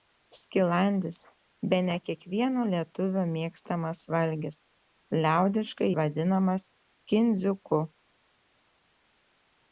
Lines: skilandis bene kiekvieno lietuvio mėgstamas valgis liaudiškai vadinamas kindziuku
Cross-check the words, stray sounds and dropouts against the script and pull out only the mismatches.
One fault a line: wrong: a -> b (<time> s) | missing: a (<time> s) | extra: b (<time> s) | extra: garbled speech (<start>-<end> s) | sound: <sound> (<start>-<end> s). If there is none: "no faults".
no faults